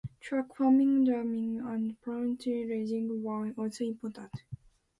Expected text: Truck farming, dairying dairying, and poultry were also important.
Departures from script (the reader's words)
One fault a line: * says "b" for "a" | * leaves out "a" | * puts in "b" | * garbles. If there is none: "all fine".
* leaves out "dairying"
* puts in "raising"